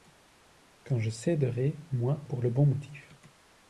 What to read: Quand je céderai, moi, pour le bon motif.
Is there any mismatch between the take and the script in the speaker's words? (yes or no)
no